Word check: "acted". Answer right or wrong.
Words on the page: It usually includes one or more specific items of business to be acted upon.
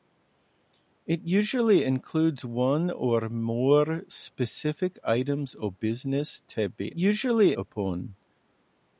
wrong